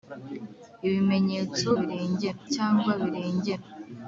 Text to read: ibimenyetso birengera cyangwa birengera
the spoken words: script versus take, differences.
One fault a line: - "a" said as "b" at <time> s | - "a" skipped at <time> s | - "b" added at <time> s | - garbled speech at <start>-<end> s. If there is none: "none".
none